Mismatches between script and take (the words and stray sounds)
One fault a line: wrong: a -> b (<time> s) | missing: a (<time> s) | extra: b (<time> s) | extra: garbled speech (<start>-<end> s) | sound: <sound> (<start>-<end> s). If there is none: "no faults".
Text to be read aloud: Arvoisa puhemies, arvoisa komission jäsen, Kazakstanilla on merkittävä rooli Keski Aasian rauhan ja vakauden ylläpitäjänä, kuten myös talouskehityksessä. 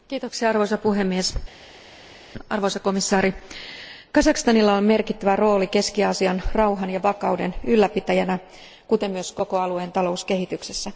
extra: koko alueen (9.3 s)